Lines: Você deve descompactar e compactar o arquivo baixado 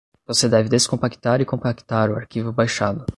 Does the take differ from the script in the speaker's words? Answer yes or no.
no